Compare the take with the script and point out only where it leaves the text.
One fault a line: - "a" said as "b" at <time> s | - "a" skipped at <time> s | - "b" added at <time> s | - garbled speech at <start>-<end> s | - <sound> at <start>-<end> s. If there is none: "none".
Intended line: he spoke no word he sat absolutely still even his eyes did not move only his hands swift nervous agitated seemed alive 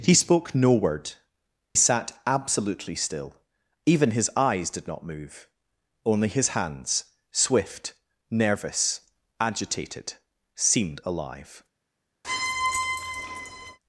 - "he" skipped at 1.1 s
- squeak at 12.2-13.8 s